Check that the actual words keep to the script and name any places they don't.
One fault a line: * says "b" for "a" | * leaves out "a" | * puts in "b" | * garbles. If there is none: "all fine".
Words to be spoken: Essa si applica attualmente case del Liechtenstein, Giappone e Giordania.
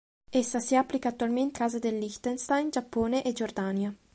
all fine